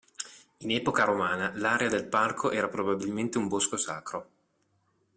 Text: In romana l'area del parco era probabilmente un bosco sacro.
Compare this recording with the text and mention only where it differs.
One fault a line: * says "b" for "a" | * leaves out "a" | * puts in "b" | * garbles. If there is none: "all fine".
* puts in "epoca"